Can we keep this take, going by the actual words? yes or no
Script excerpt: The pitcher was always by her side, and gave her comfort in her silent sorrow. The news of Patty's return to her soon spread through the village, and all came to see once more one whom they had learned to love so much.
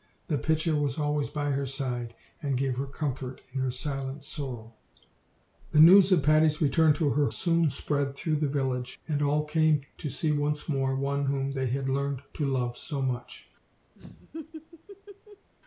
yes